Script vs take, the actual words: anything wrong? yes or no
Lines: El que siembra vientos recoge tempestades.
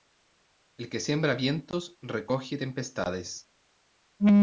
no